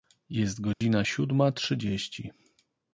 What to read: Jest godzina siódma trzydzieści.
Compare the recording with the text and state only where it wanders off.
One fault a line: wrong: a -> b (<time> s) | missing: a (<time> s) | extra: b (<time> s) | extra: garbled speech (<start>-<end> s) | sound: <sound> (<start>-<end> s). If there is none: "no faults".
sound: dropout (0.7-0.8 s)